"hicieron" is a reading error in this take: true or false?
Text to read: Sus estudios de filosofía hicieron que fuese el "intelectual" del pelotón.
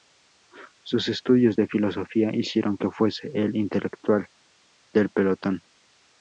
false